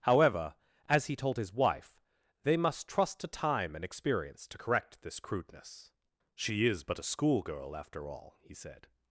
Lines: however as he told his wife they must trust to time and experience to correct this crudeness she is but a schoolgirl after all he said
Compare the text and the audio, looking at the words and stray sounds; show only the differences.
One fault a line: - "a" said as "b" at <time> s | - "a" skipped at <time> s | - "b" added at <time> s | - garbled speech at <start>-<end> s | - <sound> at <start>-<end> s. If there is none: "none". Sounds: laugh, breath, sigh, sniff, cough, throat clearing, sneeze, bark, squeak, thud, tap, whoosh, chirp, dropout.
none